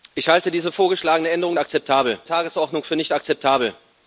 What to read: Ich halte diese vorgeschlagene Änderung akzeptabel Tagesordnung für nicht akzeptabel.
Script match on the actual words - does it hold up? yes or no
yes